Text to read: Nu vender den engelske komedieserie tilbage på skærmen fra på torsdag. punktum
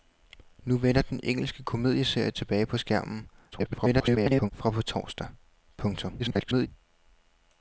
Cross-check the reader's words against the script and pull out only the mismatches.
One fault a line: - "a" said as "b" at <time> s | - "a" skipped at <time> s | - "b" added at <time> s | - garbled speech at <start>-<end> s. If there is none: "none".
- garbled speech at 3.5-4.5 s
- garbled speech at 6.2-6.7 s